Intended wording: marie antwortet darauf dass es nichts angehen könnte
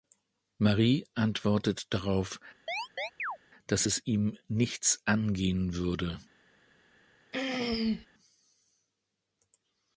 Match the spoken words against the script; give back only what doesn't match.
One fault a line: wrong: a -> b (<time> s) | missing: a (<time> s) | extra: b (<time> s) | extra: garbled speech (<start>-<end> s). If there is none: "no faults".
extra: ihm (4.1 s)
wrong: könnte -> würde (5.8 s)